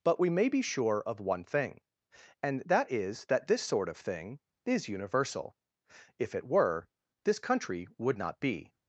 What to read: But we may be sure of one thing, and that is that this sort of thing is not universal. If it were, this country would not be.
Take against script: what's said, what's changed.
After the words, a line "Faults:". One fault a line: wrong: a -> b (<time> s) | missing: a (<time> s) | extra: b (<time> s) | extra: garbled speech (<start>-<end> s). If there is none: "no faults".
But we may be sure of one thing, and that is that this sort of thing is universal. If it were, this country would not be.
Faults:
missing: not (4.9 s)